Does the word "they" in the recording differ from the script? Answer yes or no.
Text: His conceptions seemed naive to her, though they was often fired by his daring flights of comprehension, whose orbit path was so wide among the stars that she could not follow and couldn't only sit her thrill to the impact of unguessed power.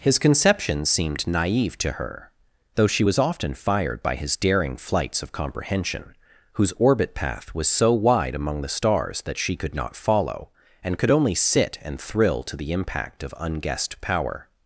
yes